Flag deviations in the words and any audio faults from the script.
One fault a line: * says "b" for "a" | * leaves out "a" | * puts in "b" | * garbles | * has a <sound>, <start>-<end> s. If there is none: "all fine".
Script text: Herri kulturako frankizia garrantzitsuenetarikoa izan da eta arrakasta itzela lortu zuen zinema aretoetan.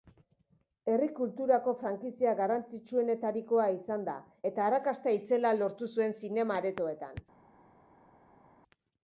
all fine